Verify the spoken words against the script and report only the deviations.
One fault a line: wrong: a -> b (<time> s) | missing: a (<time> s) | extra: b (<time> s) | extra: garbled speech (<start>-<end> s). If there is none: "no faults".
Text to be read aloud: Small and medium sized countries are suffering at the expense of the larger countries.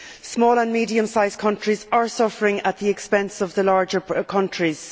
no faults